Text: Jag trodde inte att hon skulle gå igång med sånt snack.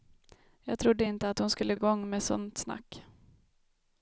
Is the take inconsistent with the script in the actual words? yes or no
yes